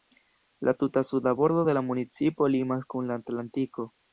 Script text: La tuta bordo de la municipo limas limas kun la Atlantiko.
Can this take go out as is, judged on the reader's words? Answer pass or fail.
fail